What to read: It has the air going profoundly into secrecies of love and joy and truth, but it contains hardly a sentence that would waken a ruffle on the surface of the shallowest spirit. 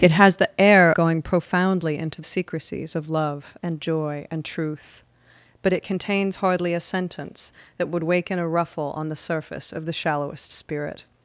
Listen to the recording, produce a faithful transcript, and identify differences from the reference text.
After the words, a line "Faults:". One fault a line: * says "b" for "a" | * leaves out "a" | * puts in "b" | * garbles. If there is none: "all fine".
It has the air going profoundly into secrecies of love and joy and truth, but it contains hardly a sentence that would waken a ruffle on the surface of the shallowest spirit.
Faults:
all fine